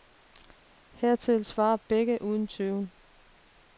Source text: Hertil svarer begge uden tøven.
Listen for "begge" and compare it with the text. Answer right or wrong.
right